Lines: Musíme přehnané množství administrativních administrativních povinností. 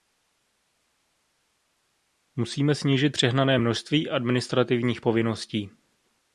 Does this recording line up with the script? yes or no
no